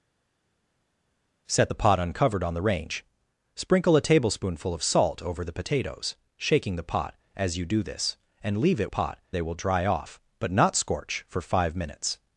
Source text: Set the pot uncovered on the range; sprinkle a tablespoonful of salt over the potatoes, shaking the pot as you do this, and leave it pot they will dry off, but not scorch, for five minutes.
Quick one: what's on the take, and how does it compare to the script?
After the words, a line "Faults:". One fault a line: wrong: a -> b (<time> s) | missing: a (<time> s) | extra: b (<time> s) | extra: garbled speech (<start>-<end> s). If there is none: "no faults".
Set the pot uncovered on the range; sprinkle a tablespoonful of salt over the potatoes, shaking the pot as you do this, and leave it pot they will dry off, but not scorch, for five minutes.
Faults:
no faults